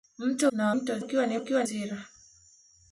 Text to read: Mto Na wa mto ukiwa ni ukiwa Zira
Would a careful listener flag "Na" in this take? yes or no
no